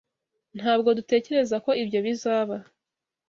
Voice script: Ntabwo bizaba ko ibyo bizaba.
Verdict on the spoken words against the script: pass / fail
fail